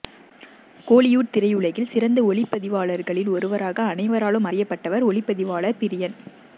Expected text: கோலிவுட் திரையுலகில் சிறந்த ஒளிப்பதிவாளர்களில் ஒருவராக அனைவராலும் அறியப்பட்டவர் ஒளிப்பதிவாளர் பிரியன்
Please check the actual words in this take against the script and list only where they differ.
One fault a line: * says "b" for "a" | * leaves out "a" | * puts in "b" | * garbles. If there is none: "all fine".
all fine